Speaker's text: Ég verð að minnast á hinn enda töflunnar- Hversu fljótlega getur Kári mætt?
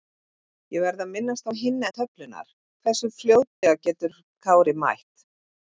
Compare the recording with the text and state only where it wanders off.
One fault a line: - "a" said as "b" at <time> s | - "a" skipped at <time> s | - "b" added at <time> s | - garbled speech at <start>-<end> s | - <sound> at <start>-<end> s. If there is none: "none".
- "enda" skipped at 1.9 s
- dropout at 3.5-3.6 s